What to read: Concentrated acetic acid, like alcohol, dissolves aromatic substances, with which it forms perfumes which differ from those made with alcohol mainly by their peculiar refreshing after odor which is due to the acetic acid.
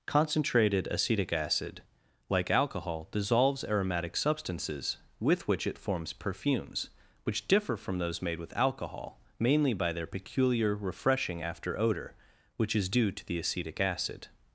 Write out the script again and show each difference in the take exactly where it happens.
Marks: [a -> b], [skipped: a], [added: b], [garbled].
Concentrated acetic acid, like alcohol, dissolves aromatic substances, with which it forms perfumes which differ from those made with alcohol mainly by their peculiar refreshing after odor which is due to the acetic acid.